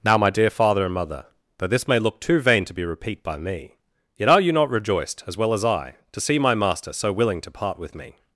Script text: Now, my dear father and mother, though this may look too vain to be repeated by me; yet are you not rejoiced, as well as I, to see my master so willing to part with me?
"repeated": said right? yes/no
no